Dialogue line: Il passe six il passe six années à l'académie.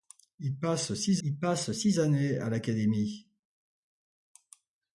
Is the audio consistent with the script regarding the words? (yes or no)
yes